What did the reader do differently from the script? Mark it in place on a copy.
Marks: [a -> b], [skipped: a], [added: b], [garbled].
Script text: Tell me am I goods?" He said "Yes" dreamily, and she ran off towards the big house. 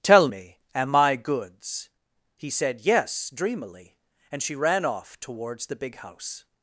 Tell me am I goods?" He said "Yes" dreamily, and she ran off towards the big house.